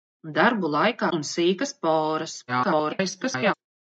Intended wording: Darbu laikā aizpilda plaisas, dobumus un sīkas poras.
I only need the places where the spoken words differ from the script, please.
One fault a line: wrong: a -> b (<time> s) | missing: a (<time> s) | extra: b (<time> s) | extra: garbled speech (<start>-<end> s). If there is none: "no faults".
missing: aizpilda plaisas dobumus (1.1 s)
extra: garbled speech (2.5-3.5 s)